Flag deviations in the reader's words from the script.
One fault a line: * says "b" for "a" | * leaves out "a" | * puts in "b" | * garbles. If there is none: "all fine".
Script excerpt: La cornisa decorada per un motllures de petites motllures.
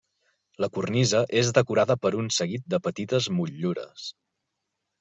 * puts in "és"
* says "seguit" for "motllures"